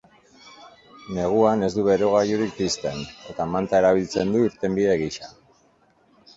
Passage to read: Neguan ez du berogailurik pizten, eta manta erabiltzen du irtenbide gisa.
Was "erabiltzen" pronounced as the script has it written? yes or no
yes